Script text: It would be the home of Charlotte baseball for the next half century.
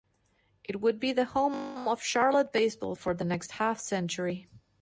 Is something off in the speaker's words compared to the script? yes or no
no